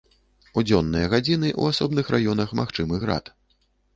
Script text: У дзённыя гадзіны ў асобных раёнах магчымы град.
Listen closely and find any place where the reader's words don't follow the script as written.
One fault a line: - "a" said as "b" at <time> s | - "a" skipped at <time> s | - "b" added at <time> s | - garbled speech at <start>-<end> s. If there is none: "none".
none